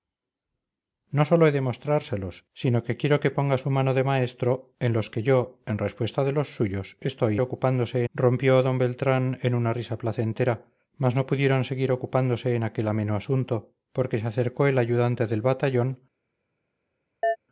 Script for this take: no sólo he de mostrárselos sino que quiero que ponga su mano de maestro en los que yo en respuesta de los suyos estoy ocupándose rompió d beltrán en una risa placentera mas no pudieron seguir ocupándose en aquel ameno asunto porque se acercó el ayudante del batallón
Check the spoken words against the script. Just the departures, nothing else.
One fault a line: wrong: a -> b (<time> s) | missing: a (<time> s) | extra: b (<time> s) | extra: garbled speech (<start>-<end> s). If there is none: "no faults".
no faults